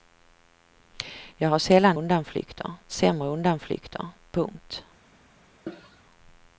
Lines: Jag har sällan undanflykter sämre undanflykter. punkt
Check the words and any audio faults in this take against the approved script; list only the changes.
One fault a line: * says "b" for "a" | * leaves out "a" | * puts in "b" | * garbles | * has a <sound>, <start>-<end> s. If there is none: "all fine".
* has a cough, 5.7-6.0 s